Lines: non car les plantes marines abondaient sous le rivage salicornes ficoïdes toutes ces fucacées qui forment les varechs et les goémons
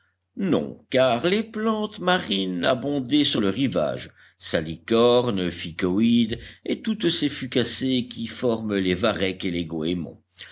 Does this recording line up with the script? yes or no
no